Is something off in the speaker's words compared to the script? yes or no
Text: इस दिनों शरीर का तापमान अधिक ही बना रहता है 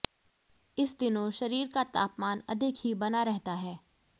no